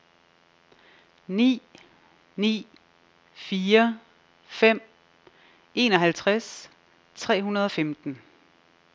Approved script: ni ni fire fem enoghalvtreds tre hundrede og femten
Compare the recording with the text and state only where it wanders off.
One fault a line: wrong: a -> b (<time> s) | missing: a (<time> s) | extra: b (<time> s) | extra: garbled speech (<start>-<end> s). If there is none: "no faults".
no faults